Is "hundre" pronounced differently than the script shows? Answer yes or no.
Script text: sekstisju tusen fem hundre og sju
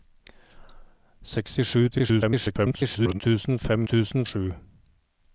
yes